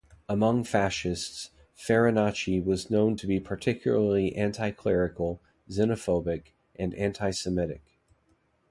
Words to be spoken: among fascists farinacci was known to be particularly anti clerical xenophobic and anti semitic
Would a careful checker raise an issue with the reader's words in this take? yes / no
no